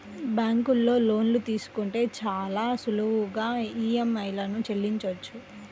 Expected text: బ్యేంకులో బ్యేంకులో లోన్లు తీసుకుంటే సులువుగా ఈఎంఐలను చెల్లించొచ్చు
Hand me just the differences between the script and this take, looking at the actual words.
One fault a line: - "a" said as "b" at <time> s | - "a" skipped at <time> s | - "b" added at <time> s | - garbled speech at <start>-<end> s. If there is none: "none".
- "బ్యేంకులో" skipped at 0.9 s
- "చాలా" added at 2.2 s